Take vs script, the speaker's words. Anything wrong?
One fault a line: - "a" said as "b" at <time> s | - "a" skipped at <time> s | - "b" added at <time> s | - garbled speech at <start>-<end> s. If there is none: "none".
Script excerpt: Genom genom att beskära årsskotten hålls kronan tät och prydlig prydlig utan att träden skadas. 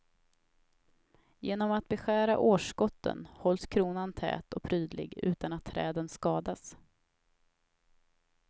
- "genom" skipped at 1.7 s
- "prydlig" skipped at 5.1 s